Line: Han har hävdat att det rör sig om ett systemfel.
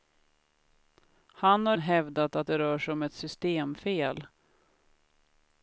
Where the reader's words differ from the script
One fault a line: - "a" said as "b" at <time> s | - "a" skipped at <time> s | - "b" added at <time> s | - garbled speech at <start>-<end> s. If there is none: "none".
none